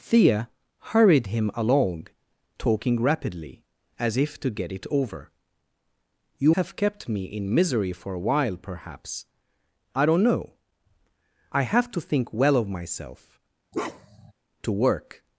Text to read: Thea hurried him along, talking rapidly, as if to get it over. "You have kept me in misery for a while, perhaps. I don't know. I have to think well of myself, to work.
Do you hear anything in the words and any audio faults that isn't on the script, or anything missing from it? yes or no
yes